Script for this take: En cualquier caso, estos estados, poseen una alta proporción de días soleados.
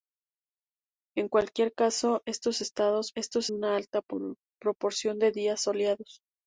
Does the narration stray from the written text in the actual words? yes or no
yes